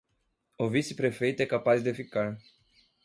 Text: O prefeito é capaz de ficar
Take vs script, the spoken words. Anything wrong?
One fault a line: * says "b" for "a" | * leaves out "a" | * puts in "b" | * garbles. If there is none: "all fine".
* puts in "vice"